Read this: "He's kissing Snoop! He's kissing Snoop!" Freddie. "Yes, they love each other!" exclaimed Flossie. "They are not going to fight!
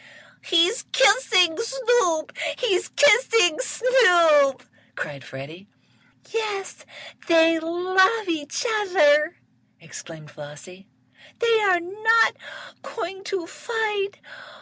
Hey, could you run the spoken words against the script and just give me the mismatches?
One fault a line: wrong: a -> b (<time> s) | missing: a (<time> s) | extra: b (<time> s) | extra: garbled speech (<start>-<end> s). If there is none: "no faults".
extra: cried (4.9 s)